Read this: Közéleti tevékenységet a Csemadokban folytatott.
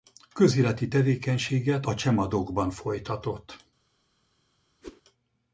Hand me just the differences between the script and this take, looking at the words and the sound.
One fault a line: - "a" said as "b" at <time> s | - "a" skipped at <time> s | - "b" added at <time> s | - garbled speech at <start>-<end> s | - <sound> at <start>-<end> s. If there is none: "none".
- whoosh at 4.8-5.0 s